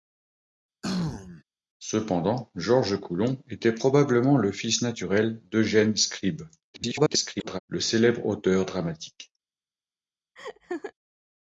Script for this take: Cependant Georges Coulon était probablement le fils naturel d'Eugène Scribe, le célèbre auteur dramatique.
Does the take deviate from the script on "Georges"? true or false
false